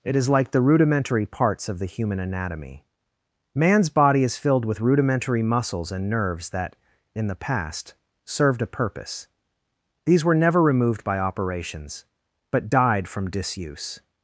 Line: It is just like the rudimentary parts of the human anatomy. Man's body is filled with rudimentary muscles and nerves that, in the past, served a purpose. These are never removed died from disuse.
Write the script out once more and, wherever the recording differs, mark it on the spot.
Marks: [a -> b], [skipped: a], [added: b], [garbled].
It is [skipped: just] like the rudimentary parts of the human anatomy. Man's body is filled with rudimentary muscles and nerves that, in the past, served a purpose. These [are -> were] never removed [added: by operations but] died from disuse.